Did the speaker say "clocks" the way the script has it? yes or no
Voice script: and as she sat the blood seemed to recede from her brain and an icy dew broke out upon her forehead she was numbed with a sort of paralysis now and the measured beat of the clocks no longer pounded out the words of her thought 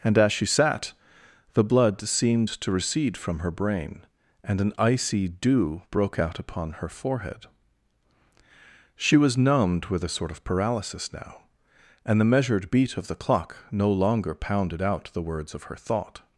no